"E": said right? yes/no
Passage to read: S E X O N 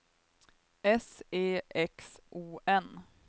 yes